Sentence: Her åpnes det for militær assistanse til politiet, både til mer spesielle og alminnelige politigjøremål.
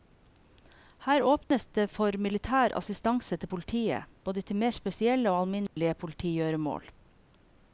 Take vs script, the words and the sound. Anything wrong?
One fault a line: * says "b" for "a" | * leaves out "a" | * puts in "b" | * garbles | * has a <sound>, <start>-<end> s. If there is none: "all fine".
* has a dropout, 1.4-1.5 s
* has a dropout, 5.7-5.8 s